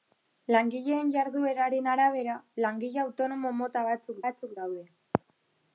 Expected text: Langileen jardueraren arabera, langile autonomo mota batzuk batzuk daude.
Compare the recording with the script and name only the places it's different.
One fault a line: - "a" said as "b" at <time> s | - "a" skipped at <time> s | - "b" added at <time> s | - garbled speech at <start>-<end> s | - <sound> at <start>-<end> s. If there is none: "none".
none